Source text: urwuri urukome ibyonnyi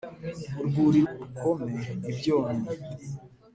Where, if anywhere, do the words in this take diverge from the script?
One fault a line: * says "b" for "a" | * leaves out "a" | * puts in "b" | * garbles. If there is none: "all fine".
all fine